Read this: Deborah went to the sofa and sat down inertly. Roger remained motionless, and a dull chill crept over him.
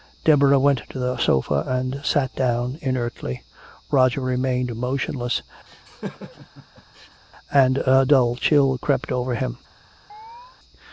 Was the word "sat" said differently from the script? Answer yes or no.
no